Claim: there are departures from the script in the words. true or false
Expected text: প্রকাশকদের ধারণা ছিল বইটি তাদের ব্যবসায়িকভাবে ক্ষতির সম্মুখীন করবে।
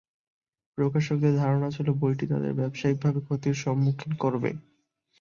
false